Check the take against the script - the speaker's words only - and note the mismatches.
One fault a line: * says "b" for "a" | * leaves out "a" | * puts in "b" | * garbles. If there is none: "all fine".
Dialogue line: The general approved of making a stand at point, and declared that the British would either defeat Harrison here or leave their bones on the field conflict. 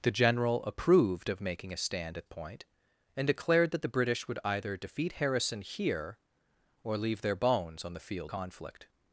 all fine